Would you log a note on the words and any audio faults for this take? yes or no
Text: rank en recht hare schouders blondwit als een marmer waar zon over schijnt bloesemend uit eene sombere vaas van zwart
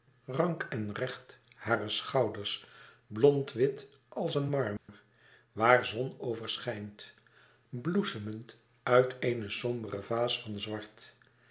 yes